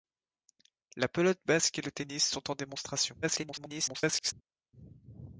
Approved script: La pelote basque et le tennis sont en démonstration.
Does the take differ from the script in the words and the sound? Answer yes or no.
yes